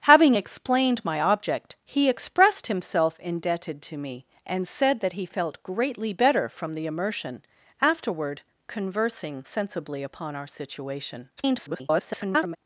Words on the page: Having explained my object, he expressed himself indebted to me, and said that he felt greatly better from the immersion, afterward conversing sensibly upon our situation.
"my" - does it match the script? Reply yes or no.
yes